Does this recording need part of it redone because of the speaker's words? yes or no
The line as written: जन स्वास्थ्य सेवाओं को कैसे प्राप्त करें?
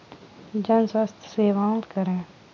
yes